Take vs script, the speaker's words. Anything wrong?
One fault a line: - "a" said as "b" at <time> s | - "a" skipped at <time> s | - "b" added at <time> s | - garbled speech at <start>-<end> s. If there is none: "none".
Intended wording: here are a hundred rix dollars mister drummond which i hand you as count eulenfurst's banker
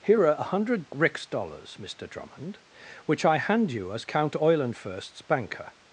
none